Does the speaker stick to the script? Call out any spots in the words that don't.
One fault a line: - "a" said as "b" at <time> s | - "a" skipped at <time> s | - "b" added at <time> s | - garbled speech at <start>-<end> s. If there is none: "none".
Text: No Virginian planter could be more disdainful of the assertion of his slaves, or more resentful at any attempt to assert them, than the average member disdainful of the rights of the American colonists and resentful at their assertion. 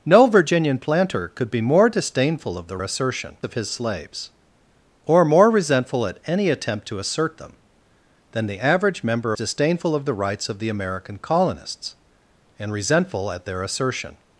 none